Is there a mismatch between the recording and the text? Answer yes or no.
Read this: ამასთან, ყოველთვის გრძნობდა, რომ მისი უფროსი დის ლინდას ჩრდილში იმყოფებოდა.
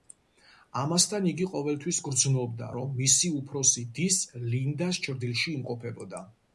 yes